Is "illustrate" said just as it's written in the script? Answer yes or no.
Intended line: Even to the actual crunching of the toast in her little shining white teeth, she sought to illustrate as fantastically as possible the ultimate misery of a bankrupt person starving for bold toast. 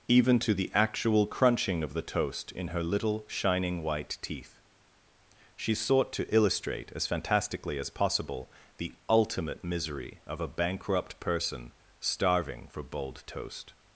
yes